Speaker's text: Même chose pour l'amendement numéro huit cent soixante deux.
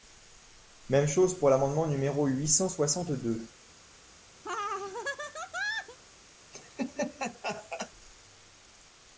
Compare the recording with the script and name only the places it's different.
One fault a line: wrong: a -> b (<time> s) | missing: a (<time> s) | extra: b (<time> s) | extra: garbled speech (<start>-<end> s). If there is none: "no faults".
no faults